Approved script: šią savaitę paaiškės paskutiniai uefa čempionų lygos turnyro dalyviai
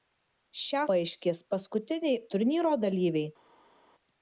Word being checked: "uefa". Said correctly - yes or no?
no